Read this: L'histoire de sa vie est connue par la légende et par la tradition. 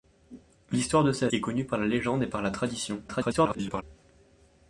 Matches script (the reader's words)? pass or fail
fail